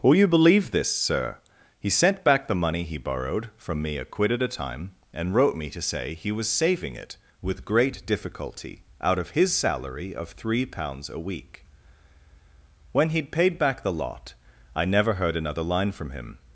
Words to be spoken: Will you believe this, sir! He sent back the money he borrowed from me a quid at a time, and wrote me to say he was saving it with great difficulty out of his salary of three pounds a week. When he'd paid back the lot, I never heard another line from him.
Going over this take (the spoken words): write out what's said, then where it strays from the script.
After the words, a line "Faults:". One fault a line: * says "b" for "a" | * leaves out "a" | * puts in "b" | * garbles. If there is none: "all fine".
Will you believe this, sir! He sent back the money he borrowed from me a quid at a time, and wrote me to say he was saving it with great difficulty out of his salary of three pounds a week. When he'd paid back the lot, I never heard another line from him.
Faults:
all fine